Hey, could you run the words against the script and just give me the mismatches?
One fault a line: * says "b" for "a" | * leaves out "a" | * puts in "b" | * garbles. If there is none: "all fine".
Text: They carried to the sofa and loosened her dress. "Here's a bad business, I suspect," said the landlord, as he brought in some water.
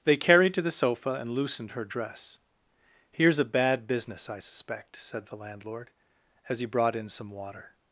all fine